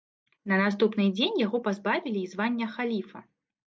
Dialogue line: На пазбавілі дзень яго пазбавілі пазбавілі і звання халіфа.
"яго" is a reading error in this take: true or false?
false